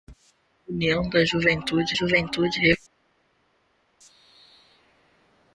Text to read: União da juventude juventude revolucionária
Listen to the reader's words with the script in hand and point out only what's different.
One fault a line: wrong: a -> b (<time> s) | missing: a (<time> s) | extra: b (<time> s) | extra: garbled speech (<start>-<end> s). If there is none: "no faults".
no faults